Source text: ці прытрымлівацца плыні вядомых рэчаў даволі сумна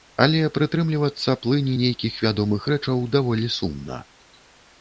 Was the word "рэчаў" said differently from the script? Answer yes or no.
no